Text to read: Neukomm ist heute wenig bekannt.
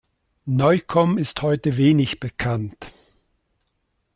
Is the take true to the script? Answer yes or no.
yes